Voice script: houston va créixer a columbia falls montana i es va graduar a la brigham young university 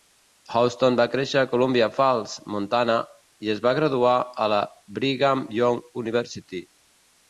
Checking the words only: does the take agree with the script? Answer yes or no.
yes